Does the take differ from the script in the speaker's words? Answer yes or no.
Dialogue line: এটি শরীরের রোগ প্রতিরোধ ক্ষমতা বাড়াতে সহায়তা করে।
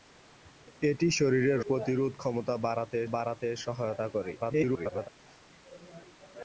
yes